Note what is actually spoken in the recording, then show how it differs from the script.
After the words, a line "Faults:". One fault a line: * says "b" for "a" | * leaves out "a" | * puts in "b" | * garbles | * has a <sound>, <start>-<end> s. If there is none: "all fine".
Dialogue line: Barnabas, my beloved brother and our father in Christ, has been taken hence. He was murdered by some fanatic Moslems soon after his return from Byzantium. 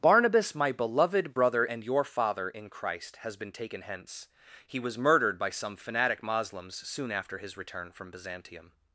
Barnabas, my beloved brother and your father in Christ, has been taken hence. He was murdered by some fanatic Moslems soon after his return from Byzantium.
Faults:
* says "your" for "our"